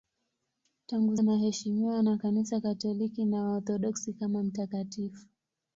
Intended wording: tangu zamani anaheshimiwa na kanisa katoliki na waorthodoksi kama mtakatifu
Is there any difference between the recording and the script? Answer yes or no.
yes